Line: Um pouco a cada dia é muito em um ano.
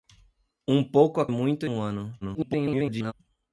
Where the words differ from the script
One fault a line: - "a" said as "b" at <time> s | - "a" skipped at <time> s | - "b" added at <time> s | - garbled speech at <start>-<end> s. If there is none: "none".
- "cada dia" skipped at 1.3 s
- "em" skipped at 1.7 s
- garbled speech at 2.2-3.1 s